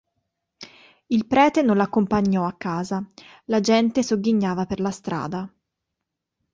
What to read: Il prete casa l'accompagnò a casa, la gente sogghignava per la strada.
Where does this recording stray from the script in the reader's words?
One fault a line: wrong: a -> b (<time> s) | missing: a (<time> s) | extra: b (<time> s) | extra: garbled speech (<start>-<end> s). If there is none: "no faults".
wrong: casa -> non (1.6 s)